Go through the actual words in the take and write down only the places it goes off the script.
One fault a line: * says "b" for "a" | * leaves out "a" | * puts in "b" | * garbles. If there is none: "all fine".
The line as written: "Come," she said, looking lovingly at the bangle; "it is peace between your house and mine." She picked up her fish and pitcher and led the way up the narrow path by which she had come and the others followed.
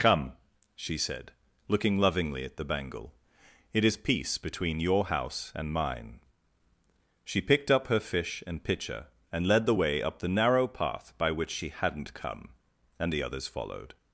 * says "hadn't" for "had"